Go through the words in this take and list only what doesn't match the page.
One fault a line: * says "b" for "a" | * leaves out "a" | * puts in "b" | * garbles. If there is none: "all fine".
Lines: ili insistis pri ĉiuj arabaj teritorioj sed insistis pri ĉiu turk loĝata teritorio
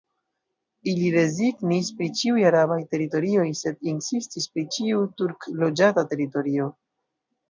* says "rezignis" for "insistis"